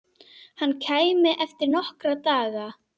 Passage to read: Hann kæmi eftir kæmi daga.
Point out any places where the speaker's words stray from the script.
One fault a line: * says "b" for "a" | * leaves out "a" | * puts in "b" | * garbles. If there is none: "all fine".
* says "nokkra" for "kæmi"